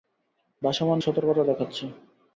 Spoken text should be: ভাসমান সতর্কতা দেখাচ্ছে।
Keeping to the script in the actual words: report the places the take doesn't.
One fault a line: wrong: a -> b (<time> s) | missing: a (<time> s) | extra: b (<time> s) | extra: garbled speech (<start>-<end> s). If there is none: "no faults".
no faults